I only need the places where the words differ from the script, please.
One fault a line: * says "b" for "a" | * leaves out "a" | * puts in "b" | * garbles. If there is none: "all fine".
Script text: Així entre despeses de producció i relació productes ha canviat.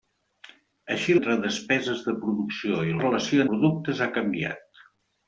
all fine